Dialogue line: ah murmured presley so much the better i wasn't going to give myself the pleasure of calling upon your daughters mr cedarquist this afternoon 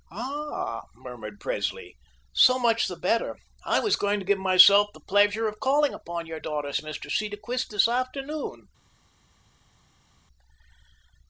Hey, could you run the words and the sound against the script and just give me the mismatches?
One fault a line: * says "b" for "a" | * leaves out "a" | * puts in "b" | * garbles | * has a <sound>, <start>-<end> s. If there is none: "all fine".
* says "was" for "wasn't"